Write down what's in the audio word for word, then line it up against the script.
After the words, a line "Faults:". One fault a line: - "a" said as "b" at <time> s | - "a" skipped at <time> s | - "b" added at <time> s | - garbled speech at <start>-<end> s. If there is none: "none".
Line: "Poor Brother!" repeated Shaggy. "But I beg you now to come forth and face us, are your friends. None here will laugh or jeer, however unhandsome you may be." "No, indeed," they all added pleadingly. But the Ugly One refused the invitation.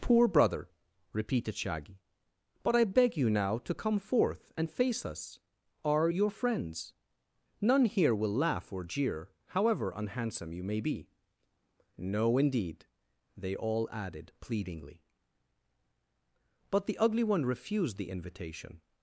"Poor Brother!" repeated Shaggy. "But I beg you now to come forth and face us, are your friends. None here will laugh or jeer, however unhandsome you may be." "No, indeed," they all added pleadingly. But the Ugly One refused the invitation.
Faults:
none